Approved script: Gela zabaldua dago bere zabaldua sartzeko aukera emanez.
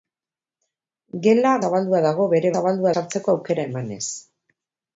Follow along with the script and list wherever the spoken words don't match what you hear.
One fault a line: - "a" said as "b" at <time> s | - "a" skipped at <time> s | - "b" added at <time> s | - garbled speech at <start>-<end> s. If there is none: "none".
none